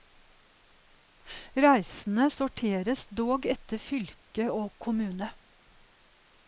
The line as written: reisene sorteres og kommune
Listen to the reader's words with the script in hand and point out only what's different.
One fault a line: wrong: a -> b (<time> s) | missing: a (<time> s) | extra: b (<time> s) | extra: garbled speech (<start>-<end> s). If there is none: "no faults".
extra: dog etter fylke (3.2 s)